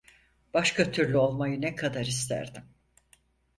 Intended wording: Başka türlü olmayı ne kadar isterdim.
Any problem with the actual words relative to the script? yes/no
no